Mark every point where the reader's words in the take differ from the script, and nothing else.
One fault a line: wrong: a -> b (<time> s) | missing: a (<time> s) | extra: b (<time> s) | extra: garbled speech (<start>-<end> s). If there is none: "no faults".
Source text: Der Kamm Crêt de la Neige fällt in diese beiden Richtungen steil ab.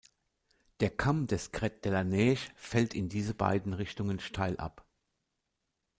extra: des (1.3 s)